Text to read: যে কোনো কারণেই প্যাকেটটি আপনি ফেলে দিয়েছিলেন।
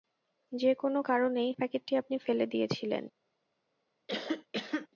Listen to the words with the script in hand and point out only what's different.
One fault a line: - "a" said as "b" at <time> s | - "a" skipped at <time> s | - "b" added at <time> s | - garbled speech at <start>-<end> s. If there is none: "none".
none